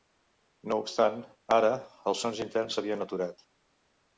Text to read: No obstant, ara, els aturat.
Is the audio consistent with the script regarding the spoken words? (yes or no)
no